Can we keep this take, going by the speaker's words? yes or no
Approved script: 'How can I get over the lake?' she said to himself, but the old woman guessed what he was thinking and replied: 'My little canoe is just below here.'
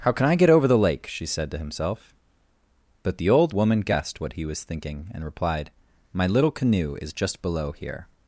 yes